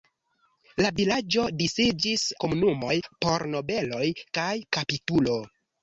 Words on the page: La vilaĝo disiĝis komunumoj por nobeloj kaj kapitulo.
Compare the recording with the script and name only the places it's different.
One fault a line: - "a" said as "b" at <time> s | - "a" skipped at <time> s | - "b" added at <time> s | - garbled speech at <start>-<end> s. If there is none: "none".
none